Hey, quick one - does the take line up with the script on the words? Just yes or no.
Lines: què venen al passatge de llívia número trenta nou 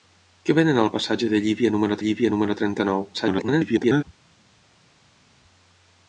no